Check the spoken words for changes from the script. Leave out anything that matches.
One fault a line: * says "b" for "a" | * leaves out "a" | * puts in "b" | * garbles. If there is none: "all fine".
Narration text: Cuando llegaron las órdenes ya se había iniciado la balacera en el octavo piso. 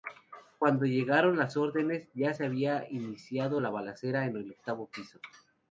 all fine